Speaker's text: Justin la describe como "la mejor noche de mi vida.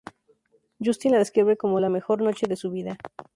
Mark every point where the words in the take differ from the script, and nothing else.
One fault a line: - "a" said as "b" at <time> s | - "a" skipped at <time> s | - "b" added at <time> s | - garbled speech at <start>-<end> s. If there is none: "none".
- "mi" said as "su" at 2.6 s